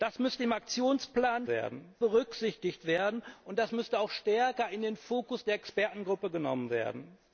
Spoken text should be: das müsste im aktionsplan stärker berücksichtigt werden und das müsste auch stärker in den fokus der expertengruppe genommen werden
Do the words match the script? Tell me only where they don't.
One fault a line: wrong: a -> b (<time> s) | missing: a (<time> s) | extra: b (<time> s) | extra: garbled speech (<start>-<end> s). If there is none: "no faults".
wrong: stärker -> werden (1.5 s)